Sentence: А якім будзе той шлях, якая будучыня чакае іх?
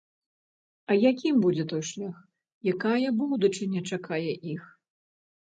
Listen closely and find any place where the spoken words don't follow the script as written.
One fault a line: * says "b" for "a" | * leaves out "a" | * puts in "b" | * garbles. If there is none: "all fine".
all fine